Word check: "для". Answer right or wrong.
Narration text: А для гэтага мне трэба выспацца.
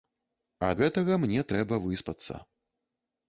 wrong